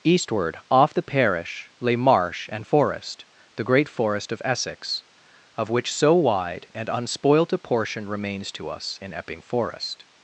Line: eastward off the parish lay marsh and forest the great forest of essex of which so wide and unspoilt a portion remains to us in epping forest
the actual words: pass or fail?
pass